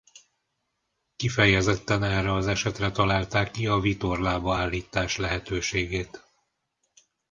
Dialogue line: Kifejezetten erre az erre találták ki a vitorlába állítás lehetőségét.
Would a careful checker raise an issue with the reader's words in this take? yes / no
yes